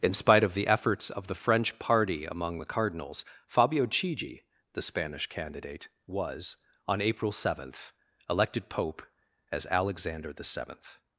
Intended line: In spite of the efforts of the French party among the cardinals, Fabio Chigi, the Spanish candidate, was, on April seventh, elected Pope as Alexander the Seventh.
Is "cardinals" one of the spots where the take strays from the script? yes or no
no